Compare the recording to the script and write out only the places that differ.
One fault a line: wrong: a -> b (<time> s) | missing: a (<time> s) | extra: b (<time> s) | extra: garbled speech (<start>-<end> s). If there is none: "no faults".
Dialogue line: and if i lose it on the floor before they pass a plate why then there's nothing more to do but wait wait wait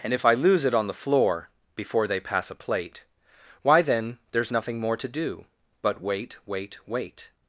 no faults